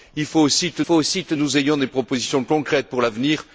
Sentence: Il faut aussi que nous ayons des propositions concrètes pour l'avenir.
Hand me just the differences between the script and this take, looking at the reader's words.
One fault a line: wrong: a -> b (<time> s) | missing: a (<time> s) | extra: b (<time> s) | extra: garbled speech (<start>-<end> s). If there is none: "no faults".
extra: faut aussi que (0.8 s)